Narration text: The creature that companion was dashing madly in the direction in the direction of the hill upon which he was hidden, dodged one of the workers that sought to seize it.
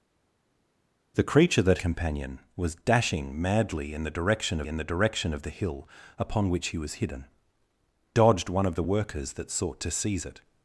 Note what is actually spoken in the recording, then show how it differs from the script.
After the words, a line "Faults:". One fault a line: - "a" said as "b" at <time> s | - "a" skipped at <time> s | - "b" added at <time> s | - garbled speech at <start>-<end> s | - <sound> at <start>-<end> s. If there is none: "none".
The creature that companion was dashing madly in the direction in the direction of the hill upon which he was hidden, dodged one of the workers that sought to seize it.
Faults:
none